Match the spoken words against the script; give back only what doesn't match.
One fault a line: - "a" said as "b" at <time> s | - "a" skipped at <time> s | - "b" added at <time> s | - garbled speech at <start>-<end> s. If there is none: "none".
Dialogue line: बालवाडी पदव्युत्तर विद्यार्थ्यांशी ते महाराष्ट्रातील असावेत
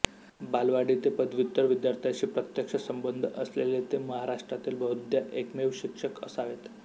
- "ते" added at 1.0 s
- "प्रत्यक्ष संबंध असलेले" added at 2.3 s
- "बहुधा एकमेव शिक्षक" added at 4.8 s